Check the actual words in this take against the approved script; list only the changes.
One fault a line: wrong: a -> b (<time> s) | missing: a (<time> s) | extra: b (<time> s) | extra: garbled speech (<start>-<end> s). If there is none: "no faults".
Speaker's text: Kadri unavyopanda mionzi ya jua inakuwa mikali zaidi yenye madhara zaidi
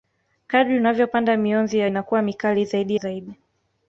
missing: jua (1.9 s)
missing: yenye madhara (2.9 s)